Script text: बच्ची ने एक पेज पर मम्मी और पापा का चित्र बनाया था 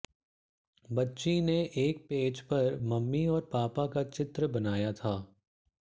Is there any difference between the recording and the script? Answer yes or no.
no